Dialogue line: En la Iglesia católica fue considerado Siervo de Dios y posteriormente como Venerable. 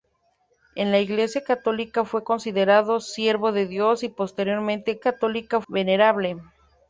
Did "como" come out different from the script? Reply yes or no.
yes